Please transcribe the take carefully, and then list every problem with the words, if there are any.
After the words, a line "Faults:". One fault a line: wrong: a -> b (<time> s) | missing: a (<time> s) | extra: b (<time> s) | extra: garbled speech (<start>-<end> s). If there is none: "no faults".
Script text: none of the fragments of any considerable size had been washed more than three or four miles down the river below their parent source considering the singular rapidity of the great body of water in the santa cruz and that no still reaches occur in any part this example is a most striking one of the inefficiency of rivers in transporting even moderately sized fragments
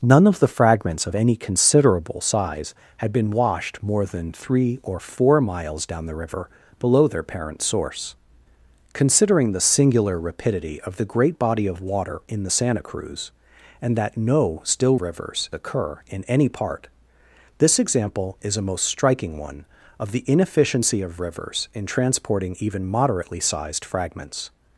none of the fragments of any considerable size had been washed more than three or four miles down the river below their parent source considering the singular rapidity of the great body of water in the santa cruz and that no still rivers occur in any part this example is a most striking one of the inefficiency of rivers in transporting even moderately sized fragments
Faults:
wrong: reaches -> rivers (15.0 s)